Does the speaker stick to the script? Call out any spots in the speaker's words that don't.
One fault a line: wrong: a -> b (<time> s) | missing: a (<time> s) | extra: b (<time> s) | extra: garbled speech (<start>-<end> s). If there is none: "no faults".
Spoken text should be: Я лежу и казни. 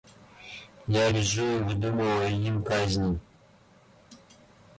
extra: выдумываю им (1.6 s)